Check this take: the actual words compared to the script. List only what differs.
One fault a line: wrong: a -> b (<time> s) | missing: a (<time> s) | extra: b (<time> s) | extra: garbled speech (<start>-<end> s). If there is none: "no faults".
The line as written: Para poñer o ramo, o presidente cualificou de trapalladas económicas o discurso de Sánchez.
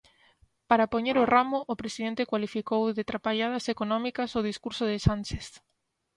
no faults